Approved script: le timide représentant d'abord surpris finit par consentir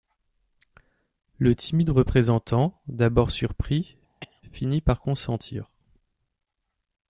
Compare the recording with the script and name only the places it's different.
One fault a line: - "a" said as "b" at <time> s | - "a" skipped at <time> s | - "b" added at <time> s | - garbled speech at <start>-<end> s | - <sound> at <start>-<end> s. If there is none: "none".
- cough at 4.2-4.4 s